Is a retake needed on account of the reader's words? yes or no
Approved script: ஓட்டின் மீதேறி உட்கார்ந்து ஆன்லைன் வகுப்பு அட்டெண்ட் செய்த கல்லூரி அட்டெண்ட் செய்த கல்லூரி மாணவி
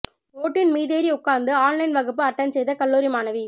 yes